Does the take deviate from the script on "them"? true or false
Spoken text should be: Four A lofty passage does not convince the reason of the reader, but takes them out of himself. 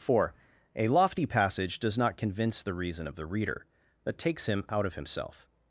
true